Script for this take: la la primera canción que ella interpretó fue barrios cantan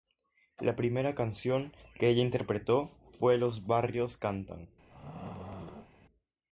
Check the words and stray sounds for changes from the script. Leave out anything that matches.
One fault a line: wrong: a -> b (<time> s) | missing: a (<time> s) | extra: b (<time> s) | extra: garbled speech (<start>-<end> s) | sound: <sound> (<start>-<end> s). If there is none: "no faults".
missing: la (0.8 s)
extra: los (3.4 s)
sound: throat clearing (4.9-5.9 s)